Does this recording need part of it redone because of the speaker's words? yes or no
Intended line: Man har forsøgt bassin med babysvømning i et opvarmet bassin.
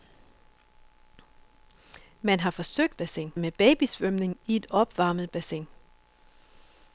no